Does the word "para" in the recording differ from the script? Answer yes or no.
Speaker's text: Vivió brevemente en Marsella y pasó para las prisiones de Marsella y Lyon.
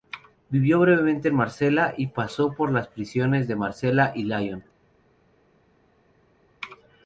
yes